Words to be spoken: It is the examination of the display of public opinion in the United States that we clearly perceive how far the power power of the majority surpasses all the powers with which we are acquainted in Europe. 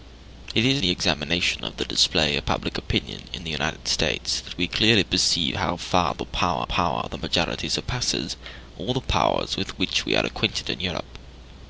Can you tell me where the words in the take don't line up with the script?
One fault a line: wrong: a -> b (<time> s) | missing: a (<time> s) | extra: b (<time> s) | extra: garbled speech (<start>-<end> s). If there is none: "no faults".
no faults